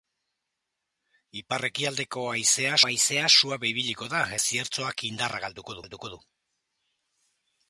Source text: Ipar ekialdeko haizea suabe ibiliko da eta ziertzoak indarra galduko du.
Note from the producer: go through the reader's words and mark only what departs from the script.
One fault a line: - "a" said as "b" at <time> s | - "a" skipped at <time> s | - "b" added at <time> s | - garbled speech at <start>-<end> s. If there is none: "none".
- "haizea" added at 2.9 s
- "eta" skipped at 4.2 s
- "galduko" added at 5.8 s